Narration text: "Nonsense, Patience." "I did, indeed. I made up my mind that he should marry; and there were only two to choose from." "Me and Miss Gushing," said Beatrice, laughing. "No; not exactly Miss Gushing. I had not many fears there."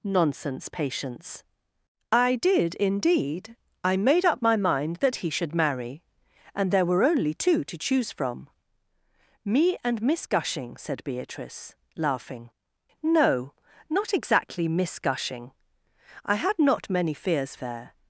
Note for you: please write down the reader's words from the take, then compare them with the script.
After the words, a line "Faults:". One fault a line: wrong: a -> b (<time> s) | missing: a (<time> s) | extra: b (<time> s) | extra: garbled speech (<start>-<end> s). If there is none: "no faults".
"Nonsense, Patience." "I did, indeed. I made up my mind that he should marry; and there were only two to choose from." "Me and Miss Gushing," said Beatrice, laughing. "No; not exactly Miss Gushing. I had not many fears there."
Faults:
no faults